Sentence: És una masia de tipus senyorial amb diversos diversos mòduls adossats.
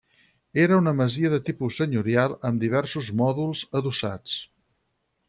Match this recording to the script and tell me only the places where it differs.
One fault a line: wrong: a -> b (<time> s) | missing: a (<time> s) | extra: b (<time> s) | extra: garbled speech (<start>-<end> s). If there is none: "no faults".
wrong: És -> Era (0.6 s)
missing: diversos (3.1 s)